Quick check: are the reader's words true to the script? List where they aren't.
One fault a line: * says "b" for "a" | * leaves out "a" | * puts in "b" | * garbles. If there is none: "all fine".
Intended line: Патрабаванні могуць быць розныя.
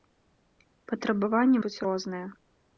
* leaves out "могуць"